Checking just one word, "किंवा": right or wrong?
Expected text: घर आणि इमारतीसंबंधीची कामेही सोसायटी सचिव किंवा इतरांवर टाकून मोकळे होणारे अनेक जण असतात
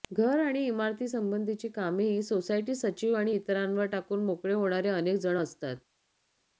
wrong